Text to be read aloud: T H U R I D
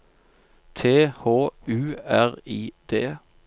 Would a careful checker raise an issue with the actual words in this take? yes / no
no